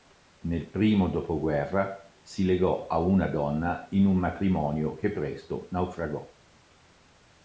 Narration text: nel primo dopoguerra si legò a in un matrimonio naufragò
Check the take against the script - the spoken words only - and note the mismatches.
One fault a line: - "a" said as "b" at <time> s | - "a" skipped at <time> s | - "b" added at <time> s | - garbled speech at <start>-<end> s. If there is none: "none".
- "una donna" added at 3.0 s
- "che presto" added at 5.0 s